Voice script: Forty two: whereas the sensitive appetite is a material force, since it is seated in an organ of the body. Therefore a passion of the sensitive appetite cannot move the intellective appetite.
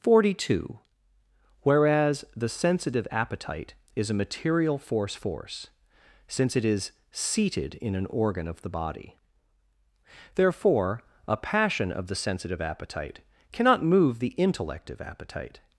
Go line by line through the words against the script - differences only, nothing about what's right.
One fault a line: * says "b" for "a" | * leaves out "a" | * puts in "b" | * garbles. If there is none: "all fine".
* puts in "force"